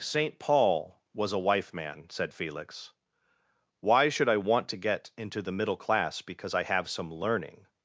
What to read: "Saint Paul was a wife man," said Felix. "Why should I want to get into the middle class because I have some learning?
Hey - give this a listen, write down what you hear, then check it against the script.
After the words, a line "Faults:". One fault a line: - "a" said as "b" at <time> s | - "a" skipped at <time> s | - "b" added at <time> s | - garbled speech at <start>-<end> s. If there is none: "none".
"Saint Paul was a wife man," said Felix. "Why should I want to get into the middle class because I have some learning?
Faults:
none